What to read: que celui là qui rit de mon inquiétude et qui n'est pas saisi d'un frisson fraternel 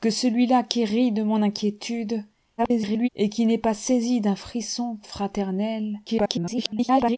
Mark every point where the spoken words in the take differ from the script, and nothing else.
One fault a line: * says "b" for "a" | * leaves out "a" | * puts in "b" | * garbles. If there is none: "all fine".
* garbles
* garbles